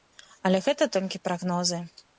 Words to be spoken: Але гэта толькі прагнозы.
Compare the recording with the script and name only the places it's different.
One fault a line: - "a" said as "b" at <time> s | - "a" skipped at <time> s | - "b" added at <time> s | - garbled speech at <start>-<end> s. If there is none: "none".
none